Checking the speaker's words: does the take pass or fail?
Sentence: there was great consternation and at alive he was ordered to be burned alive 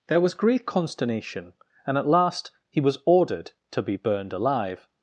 fail